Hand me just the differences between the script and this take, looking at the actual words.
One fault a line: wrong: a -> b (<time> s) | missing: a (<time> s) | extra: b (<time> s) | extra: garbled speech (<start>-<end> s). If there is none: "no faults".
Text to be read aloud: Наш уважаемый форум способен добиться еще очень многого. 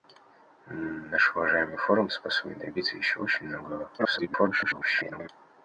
extra: garbled speech (4.0-5.3 s)